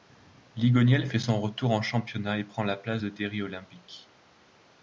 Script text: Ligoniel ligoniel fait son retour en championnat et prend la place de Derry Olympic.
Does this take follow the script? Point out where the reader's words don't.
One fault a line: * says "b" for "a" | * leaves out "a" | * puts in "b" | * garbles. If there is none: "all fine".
* leaves out "ligoniel"